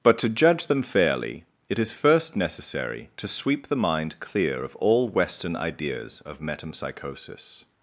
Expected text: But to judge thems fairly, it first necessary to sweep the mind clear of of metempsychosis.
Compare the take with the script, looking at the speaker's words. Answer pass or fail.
fail